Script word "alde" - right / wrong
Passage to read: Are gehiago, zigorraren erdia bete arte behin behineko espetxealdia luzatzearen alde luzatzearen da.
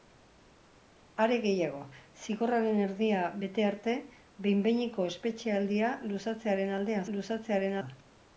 right